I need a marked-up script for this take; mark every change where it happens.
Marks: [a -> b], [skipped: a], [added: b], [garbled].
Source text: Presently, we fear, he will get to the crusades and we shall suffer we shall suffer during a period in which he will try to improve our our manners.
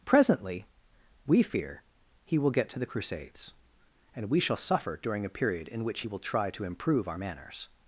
Presently, we fear, he will get to the crusades and we shall suffer [skipped: we shall suffer] during a period in which he will try to improve our [skipped: our] manners.